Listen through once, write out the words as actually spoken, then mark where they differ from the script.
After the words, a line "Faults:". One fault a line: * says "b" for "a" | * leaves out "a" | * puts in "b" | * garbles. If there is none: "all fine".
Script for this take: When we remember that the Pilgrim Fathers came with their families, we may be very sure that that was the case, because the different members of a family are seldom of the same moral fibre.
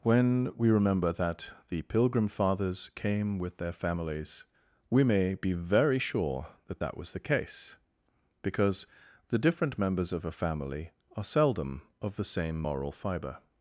When we remember that the Pilgrim Fathers came with their families, we may be very sure that that was the case, because the different members of a family are seldom of the same moral fibre.
Faults:
all fine